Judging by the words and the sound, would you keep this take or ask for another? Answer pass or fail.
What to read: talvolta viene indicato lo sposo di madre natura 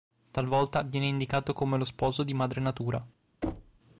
fail